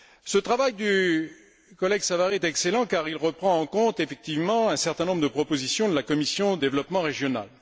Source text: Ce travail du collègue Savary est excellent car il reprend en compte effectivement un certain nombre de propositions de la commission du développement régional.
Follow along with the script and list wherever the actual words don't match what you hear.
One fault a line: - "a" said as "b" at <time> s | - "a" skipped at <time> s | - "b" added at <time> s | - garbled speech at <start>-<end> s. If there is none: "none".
- "du" skipped at 6.6 s